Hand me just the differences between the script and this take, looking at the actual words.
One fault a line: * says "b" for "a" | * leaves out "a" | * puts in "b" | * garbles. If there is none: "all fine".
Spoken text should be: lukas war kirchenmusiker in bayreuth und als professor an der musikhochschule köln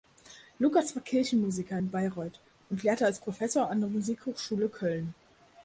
* puts in "lehrte"